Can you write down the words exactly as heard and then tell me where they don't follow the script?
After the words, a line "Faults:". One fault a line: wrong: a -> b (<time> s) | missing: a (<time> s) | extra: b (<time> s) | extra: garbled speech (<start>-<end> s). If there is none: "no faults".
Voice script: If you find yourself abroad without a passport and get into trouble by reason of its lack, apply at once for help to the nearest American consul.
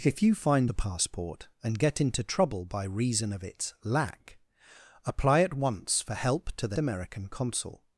If you find a passport and get into trouble by reason of its lack, apply at once for help to the American consul.
Faults:
missing: yourself abroad without (0.7 s)
missing: nearest (6.8 s)